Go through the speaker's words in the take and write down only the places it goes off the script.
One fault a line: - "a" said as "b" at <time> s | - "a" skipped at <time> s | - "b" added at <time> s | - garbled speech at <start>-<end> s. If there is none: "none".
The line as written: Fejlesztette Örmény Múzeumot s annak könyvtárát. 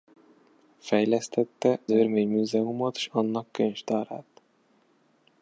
none